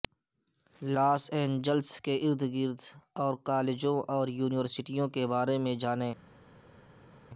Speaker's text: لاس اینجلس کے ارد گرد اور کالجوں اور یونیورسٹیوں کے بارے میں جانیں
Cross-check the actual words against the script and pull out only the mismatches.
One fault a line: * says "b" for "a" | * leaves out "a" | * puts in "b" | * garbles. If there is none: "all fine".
all fine